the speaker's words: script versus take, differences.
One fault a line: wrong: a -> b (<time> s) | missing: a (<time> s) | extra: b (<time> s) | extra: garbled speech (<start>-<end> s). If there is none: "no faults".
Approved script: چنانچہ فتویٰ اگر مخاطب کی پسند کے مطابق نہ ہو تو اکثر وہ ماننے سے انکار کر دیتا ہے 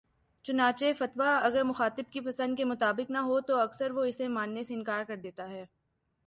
extra: اسے (4.0 s)